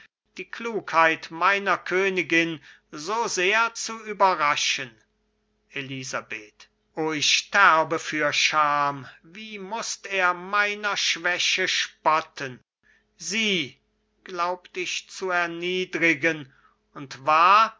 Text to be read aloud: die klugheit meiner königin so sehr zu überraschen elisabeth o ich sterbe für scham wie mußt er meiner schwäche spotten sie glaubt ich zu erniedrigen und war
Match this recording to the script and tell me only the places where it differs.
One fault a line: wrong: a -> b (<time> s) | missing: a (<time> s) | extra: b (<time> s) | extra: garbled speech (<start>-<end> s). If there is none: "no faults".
no faults